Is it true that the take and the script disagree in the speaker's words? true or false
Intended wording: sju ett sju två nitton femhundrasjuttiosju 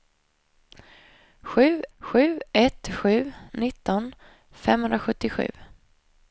true